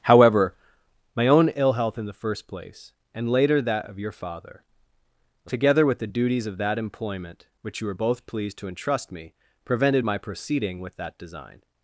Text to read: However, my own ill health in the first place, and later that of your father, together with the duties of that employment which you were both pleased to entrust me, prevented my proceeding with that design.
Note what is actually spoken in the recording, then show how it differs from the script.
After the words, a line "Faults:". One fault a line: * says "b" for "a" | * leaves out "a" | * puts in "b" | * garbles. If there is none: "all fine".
However, my own ill health in the first place, and later that of your father, together with the duties of that employment which you were both pleased to entrust me, prevented my proceeding with that design.
Faults:
all fine